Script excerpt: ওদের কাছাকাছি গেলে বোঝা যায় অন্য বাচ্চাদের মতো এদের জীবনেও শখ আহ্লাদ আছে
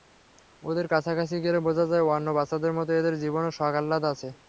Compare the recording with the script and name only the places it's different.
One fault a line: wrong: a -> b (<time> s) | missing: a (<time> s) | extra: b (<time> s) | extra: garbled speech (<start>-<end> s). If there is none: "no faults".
no faults